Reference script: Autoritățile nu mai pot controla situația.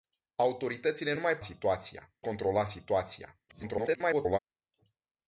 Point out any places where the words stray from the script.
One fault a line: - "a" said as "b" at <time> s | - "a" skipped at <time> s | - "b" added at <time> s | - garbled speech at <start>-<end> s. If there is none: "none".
- "pot" said as "situația" at 1.4 s
- garbled speech at 3.5-4.4 s